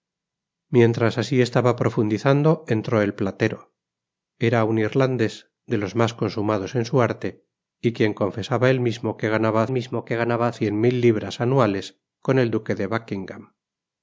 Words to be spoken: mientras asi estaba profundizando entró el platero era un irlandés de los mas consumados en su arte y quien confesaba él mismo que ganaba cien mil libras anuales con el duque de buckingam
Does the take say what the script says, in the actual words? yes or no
no